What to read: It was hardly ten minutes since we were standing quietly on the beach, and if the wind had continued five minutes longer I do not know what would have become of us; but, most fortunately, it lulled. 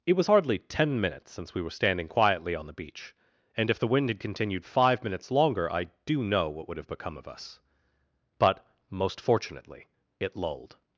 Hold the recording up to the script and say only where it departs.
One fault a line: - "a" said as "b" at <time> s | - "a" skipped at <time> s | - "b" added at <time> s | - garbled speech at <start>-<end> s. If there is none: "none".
- "not" skipped at 6.2 s